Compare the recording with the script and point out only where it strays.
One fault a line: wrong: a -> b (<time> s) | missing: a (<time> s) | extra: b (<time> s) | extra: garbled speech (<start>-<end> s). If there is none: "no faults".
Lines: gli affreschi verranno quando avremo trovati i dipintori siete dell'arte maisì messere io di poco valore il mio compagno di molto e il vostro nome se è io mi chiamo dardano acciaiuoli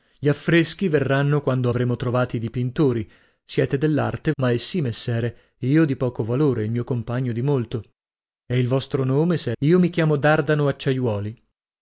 no faults